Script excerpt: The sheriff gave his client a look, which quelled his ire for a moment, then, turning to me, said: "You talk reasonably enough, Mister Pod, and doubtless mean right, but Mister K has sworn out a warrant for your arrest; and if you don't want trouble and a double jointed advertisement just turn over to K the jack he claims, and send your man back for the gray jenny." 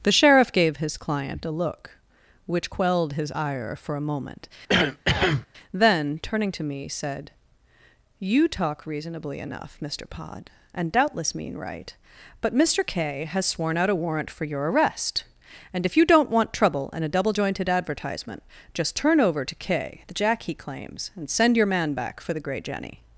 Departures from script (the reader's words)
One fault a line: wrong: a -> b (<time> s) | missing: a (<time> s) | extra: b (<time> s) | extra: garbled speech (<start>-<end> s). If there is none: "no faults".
no faults